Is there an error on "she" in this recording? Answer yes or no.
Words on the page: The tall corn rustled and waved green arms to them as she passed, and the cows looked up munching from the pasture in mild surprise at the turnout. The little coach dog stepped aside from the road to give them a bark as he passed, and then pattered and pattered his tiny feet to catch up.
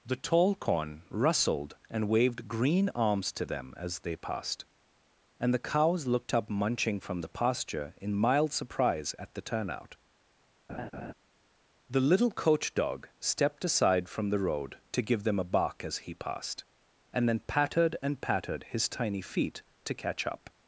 yes